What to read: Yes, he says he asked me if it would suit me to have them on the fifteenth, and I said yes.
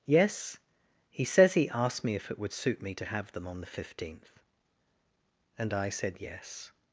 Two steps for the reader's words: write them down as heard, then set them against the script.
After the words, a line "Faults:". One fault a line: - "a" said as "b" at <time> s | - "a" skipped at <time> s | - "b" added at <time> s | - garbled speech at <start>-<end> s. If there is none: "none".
Yes, he says he asked me if it would suit me to have them on the fifteenth, and I said yes.
Faults:
none